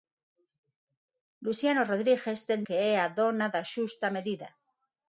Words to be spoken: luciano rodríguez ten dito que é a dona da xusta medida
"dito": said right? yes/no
no